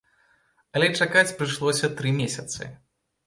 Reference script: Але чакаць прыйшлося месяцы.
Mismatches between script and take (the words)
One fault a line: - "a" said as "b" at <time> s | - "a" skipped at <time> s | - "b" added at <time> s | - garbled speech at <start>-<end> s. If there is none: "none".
- "тры" added at 2.0 s